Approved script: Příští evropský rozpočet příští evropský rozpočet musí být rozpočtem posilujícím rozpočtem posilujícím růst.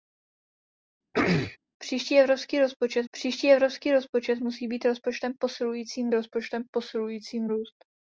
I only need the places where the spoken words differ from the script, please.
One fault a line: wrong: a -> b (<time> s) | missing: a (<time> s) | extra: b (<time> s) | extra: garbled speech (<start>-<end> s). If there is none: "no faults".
no faults